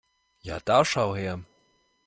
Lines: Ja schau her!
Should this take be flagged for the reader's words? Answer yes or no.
yes